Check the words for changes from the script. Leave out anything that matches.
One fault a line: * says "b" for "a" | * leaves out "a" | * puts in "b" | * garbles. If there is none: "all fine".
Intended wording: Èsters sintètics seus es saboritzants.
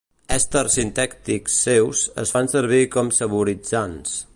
* puts in "fan servir com"